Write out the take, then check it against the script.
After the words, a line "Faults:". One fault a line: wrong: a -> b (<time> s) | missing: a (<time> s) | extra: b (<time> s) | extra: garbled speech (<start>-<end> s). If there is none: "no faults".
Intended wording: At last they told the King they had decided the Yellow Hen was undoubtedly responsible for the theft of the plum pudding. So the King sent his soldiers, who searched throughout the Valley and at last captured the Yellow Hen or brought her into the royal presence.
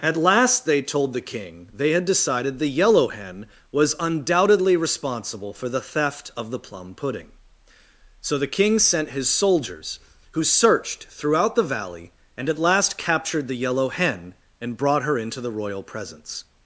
At last they told the King they had decided the Yellow Hen was undoubtedly responsible for the theft of the plum pudding. So the King sent his soldiers, who searched throughout the Valley and at last captured the Yellow Hen and brought her into the royal presence.
Faults:
wrong: or -> and (14.6 s)